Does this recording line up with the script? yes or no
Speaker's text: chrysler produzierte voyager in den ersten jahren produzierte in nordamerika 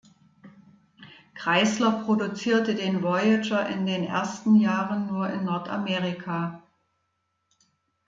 no